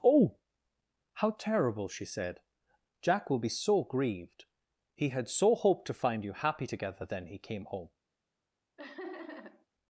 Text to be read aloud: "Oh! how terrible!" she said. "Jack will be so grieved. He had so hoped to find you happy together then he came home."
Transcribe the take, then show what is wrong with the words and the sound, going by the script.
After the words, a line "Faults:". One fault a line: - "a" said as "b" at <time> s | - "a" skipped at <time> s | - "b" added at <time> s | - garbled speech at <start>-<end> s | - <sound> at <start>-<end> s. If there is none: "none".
"Oh! how terrible!" she said. "Jack will be so grieved. He had so hoped to find you happy together then he came home."
Faults:
- laugh at 8.8-9.7 s